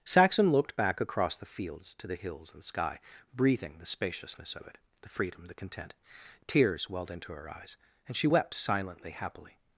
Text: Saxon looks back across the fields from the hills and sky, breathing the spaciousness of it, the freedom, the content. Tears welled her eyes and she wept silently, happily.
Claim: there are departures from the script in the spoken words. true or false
true